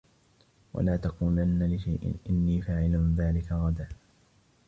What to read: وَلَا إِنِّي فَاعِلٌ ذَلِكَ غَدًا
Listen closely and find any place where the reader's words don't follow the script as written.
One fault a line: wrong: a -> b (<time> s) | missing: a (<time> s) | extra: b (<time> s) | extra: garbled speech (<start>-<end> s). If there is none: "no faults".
extra: تَقُولَنَّ لِشَيْءٍ (1.0 s)